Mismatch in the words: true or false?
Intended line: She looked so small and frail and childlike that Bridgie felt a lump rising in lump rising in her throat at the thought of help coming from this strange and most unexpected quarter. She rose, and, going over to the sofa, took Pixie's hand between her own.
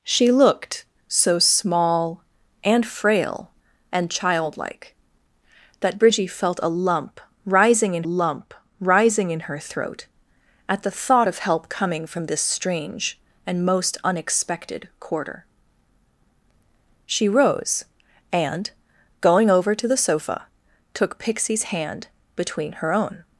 false